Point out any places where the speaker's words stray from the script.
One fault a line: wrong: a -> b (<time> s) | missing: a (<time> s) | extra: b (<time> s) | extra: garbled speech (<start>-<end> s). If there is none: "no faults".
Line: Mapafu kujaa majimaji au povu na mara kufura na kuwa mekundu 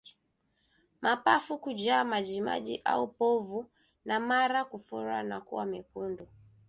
no faults